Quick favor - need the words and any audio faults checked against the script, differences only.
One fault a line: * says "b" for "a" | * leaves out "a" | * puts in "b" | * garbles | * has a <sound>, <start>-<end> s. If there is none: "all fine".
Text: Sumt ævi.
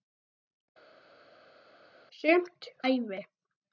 all fine